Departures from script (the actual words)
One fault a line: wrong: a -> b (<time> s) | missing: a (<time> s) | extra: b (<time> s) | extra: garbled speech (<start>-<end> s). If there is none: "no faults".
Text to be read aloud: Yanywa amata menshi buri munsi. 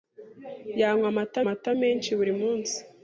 extra: amata (1.4 s)